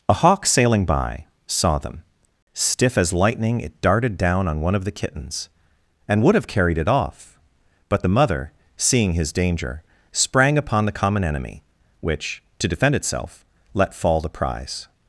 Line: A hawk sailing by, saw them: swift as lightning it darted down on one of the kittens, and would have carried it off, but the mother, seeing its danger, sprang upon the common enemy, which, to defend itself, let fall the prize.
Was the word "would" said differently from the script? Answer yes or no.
no